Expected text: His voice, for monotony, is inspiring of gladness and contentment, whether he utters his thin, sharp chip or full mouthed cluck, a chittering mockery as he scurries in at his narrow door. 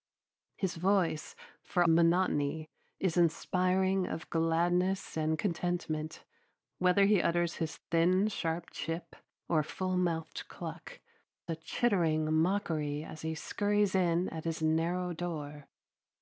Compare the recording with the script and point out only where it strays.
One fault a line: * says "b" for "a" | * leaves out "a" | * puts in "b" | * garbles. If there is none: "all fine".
all fine